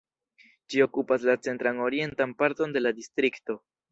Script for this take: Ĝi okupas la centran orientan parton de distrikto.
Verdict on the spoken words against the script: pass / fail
fail